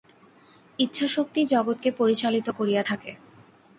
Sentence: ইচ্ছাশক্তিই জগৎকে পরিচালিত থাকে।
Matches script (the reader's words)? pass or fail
fail